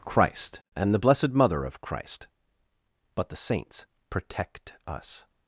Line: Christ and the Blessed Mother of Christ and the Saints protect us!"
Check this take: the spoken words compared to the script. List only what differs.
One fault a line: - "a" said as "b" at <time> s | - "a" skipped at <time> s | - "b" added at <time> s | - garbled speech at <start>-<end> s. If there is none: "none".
- "and" said as "but" at 3.1 s